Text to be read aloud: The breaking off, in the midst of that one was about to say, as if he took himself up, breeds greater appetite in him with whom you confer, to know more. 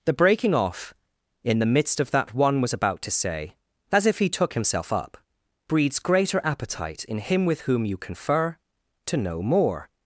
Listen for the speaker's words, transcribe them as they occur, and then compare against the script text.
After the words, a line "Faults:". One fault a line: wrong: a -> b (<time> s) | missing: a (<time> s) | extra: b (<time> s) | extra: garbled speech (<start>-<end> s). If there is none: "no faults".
The breaking off, in the midst of that one was about to say, as if he took himself up, breeds greater appetite in him with whom you confer, to know more.
Faults:
no faults